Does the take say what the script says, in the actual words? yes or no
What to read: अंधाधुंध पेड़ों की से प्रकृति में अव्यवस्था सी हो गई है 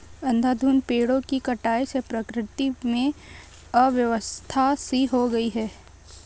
no